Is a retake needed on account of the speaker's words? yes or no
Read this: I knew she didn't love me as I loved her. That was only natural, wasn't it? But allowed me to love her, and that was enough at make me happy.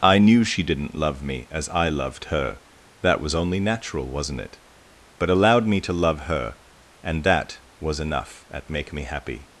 no